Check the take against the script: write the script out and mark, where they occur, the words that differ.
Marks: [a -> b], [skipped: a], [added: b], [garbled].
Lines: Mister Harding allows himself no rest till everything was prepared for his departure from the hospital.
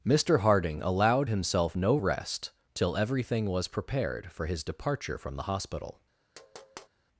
Mister Harding [allows -> allowed] himself no rest till everything was prepared for his departure from the hospital.